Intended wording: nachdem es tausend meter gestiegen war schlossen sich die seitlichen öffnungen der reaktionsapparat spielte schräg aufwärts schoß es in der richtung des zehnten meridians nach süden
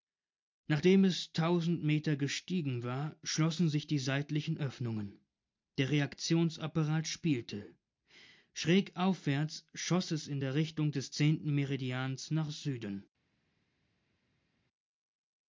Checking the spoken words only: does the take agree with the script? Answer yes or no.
yes